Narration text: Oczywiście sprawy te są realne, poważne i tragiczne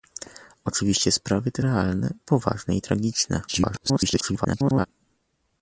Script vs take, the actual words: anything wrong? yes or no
yes